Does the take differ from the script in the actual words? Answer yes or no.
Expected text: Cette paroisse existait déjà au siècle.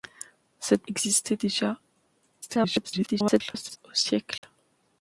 yes